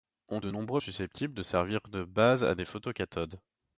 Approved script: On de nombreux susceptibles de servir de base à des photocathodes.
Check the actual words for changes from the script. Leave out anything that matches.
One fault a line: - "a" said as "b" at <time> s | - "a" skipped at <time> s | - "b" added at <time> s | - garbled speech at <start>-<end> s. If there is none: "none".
none